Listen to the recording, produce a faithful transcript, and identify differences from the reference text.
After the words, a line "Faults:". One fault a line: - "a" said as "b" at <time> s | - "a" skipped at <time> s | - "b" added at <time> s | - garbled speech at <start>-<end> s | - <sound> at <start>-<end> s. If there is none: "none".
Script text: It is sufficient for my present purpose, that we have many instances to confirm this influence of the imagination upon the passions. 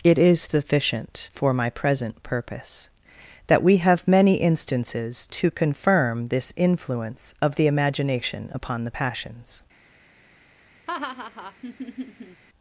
It is sufficient for my present purpose, that we have many instances to confirm this influence of the imagination upon the passions.
Faults:
- laugh at 10.9-12.4 s